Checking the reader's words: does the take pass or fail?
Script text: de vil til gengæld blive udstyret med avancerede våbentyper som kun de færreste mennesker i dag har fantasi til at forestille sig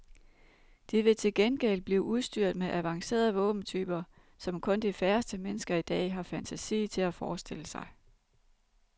pass